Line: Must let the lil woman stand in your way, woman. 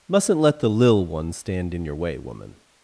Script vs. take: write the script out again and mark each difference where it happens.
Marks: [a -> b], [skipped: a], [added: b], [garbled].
[Must -> Mustn't] let the lil [woman -> one] stand in your way, woman.